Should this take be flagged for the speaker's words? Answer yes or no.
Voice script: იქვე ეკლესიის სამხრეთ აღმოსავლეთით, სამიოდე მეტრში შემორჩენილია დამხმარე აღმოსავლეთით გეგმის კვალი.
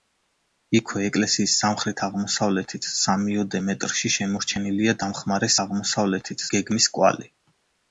no